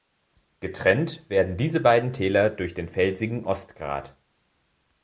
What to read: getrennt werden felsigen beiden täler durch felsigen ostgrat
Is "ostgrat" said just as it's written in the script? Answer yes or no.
yes